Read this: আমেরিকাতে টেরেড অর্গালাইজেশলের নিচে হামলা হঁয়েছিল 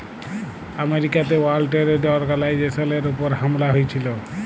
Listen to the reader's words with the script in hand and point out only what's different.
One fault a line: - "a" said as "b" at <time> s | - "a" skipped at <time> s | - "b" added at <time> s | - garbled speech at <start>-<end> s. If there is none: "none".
- "ওয়ার্ল্ড" added at 1.4 s
- "নিচে" said as "উপর" at 3.1 s